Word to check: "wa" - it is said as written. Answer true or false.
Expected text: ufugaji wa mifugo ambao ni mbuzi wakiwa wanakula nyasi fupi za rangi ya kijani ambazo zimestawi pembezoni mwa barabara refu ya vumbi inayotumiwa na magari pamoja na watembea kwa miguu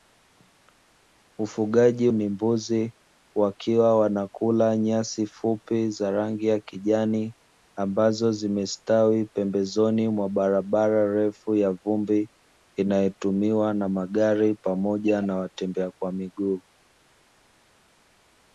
false